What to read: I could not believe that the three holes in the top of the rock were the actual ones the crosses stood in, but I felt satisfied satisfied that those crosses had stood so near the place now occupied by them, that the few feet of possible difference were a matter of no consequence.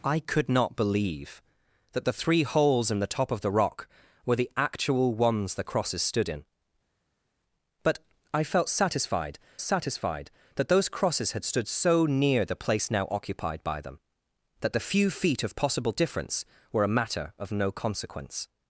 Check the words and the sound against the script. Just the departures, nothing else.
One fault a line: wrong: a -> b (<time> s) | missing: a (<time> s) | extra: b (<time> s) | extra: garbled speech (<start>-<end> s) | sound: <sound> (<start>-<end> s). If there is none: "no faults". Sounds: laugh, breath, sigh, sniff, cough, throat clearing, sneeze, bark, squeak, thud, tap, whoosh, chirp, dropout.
no faults